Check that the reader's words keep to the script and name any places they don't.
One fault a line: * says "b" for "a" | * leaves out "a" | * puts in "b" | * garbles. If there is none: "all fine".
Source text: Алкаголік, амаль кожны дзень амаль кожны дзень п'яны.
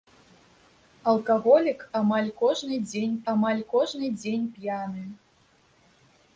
all fine